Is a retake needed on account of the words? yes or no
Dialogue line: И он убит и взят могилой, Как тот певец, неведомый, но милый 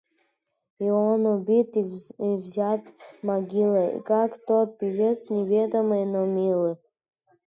no